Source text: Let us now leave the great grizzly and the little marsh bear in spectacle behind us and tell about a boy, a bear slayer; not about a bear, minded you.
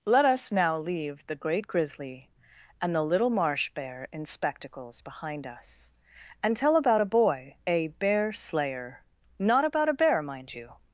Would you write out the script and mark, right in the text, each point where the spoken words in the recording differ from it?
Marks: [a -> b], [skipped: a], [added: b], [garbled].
Let us now leave the great grizzly and the little marsh bear in [spectacle -> spectacles] behind us and tell about a boy, a bear slayer; not about a bear, [minded -> mind] you.